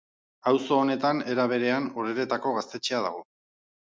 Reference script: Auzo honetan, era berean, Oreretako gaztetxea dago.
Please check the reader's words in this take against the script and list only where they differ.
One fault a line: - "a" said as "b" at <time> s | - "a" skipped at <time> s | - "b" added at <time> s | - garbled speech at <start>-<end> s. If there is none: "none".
none